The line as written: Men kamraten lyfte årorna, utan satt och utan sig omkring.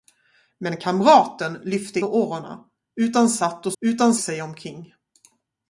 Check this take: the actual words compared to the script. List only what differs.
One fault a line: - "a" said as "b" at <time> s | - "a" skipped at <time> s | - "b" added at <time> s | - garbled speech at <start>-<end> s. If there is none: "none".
none